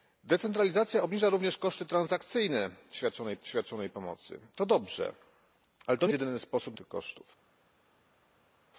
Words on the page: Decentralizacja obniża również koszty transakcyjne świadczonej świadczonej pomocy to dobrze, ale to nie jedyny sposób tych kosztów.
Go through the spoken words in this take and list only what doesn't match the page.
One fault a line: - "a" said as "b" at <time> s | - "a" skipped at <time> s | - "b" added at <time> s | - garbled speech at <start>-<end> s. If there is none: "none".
none